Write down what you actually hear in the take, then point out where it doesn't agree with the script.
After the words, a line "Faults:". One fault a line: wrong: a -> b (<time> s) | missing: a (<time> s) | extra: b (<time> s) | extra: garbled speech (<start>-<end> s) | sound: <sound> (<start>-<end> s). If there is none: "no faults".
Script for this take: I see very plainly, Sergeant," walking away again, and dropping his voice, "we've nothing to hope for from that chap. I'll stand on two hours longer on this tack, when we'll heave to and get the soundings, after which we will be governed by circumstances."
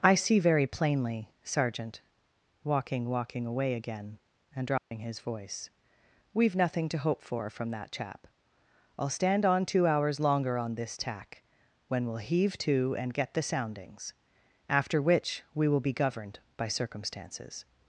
I see very plainly, Sergeant," walking walking away again, and dropping his voice, "we've nothing to hope for from that chap. I'll stand on two hours longer on this tack, when we'll heave to and get the soundings, after which we will be governed by circumstances."
Faults:
extra: walking (3.1 s)
sound: dropout (4.8-4.9 s)